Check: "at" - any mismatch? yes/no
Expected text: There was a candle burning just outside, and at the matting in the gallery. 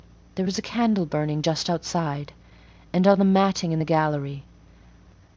yes